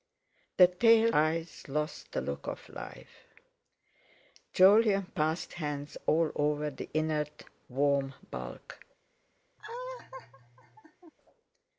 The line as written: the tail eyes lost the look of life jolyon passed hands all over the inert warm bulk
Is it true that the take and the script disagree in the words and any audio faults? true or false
true